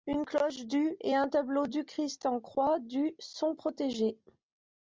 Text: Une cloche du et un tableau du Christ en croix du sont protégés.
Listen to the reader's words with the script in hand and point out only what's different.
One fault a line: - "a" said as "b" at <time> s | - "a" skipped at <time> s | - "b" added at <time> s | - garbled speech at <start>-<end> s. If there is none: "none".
none